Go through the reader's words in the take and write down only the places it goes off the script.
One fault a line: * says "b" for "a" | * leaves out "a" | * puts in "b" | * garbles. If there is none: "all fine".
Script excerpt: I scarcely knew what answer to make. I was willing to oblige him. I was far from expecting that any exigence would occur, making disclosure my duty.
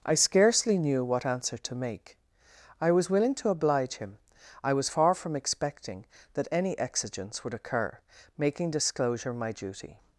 all fine